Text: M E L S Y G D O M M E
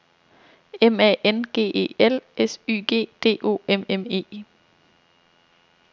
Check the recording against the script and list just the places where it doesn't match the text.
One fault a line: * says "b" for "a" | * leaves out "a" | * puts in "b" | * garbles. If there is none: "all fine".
* puts in "A N G"